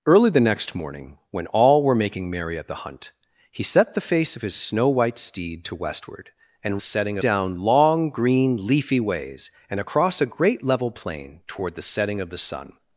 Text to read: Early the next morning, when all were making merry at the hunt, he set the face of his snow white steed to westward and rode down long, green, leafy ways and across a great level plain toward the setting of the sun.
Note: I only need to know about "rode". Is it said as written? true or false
false